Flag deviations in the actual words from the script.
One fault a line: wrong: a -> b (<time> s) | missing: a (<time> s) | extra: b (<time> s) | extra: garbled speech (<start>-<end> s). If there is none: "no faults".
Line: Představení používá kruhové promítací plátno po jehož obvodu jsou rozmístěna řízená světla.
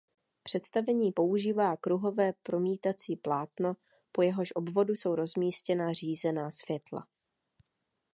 no faults